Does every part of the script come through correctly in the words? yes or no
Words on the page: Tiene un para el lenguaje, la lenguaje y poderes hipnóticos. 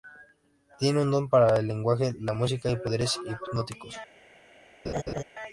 no